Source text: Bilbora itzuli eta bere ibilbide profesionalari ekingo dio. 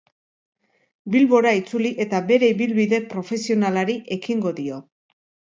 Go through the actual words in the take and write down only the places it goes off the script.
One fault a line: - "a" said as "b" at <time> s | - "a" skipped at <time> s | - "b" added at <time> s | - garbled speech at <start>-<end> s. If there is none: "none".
none